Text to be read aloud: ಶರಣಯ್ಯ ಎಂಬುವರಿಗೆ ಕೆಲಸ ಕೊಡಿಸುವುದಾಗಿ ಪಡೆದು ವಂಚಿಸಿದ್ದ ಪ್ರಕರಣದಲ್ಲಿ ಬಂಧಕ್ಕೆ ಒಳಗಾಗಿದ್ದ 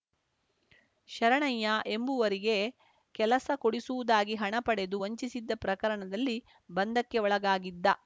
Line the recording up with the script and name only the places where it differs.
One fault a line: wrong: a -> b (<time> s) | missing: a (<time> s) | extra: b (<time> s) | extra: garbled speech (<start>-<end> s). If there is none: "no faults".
extra: ಹಣ (4.3 s)